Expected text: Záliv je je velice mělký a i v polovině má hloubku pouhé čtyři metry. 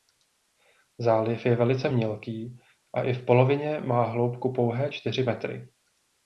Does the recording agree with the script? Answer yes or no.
no